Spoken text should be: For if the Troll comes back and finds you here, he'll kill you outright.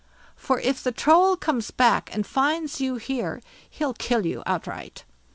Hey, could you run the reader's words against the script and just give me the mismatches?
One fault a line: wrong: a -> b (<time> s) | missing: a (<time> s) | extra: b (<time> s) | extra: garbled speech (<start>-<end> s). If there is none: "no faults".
no faults